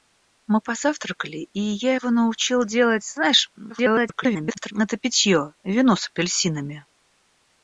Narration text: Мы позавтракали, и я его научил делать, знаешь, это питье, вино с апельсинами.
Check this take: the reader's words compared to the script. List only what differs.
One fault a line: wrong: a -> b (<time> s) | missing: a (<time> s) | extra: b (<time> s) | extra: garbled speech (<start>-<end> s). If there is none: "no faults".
extra: garbled speech (3.7-4.7 s)